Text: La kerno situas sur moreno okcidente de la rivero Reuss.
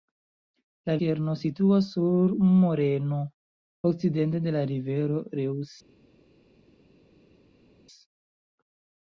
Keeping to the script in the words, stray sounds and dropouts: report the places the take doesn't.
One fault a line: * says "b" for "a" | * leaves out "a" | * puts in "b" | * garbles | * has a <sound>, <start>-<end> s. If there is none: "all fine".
all fine